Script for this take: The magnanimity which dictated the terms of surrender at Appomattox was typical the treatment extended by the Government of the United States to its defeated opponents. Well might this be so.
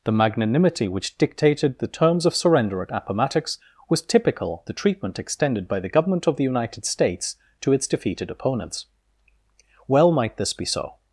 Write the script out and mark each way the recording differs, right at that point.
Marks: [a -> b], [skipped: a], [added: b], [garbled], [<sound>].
The magnanimity which dictated the terms of surrender at Appomattox was typical the treatment extended by the Government of the United States to its defeated opponents. Well might this be so.